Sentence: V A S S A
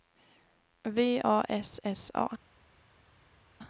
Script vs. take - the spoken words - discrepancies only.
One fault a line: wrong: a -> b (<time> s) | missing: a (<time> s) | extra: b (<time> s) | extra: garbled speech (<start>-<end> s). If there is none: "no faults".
no faults